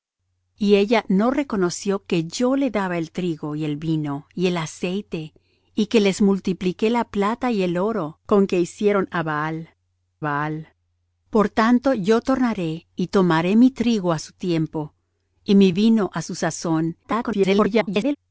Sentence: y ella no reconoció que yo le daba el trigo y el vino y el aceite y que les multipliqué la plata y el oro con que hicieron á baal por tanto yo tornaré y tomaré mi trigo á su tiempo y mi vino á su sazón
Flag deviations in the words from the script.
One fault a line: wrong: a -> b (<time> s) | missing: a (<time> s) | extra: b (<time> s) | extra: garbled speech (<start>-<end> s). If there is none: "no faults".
extra: baal (10.2 s)
extra: garbled speech (17.0-18.2 s)